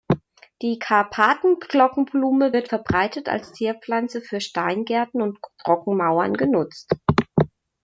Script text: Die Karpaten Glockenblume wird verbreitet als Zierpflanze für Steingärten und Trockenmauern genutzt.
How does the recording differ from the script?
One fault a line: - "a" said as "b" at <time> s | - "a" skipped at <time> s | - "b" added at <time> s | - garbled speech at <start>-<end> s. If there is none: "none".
none